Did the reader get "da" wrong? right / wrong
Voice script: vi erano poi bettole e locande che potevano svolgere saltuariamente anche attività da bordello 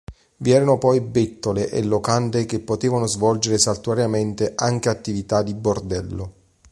wrong